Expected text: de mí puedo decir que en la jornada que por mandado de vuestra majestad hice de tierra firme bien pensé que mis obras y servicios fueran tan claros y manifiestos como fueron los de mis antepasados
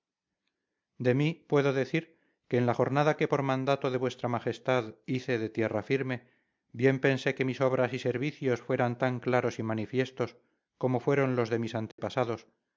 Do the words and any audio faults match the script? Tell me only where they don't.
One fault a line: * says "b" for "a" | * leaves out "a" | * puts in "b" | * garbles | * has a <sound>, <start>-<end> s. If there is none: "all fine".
* has a dropout, 11.9-12.0 s